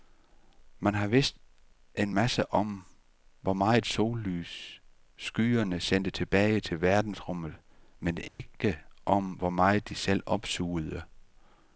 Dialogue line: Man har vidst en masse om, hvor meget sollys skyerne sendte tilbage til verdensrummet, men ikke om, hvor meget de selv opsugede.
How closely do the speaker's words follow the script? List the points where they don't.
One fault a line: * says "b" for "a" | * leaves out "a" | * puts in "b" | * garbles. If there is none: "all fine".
all fine